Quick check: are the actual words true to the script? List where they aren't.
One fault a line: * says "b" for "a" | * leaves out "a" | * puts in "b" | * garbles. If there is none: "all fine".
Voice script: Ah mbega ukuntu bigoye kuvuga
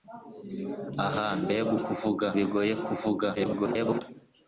* says "kuvuga" for "ukuntu"
* garbles